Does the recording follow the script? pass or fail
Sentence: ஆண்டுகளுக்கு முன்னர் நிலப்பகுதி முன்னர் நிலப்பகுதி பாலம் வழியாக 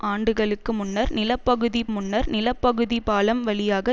pass